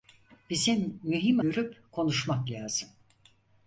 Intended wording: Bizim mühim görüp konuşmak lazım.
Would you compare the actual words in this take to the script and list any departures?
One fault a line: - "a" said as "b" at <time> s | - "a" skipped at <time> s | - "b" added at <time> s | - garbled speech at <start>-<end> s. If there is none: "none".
none